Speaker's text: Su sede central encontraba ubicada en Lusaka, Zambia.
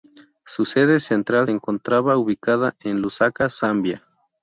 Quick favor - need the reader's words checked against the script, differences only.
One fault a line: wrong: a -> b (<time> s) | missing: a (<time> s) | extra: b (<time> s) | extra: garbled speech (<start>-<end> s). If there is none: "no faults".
no faults